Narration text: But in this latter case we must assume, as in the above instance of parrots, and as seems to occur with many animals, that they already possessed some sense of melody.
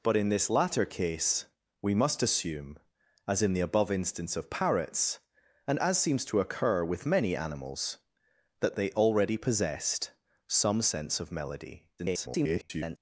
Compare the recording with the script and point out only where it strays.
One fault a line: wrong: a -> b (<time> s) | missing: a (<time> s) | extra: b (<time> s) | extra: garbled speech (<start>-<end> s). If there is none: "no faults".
extra: garbled speech (12.0-13.0 s)